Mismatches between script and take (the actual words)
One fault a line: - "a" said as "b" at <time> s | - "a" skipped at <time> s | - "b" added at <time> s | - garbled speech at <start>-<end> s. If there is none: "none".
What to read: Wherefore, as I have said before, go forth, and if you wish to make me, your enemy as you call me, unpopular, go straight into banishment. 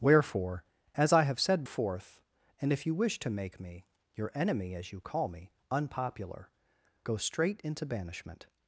- "before go" skipped at 1.6 s